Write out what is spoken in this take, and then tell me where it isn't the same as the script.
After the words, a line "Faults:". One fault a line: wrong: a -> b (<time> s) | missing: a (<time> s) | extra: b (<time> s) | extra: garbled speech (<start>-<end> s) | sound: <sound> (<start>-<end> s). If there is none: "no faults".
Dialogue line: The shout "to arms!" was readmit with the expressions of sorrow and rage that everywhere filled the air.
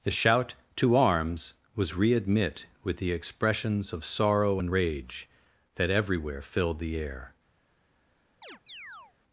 The shout "to arms!" was readmit with the expressions of sorrow and rage that everywhere filled the air.
Faults:
sound: chirp (8.4-9.1 s)